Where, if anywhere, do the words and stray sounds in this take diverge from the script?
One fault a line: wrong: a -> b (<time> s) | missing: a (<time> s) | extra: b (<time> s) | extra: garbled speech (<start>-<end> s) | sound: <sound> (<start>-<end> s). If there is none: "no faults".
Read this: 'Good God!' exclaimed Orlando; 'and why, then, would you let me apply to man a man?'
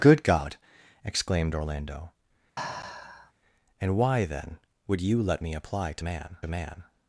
sound: sigh (2.6-3.3 s)